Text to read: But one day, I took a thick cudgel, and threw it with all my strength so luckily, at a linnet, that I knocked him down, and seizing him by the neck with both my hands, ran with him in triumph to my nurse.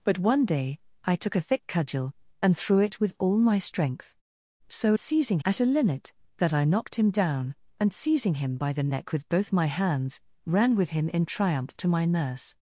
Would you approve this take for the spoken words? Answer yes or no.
no